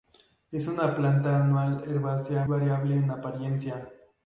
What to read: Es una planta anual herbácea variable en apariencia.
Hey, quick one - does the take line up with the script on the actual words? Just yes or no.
yes